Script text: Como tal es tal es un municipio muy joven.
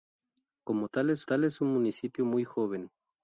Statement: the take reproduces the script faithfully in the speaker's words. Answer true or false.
true